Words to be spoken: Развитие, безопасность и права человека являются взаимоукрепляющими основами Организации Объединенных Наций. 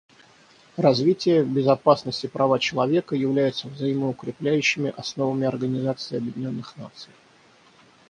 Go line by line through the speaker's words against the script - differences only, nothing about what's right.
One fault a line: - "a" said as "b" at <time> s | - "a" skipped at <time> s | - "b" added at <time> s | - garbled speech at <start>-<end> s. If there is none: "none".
none